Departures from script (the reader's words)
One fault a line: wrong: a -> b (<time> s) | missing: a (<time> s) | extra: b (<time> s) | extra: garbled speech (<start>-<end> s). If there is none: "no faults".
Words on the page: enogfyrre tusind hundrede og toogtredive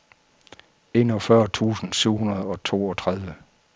extra: syv (1.9 s)